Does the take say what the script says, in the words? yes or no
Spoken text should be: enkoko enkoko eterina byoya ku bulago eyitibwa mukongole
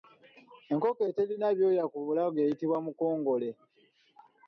no